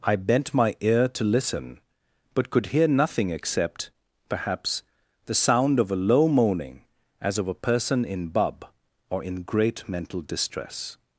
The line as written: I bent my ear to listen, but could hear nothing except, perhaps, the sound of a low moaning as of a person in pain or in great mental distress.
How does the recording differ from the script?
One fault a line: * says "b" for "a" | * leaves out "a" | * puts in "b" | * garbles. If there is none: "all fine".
* says "bub" for "pain"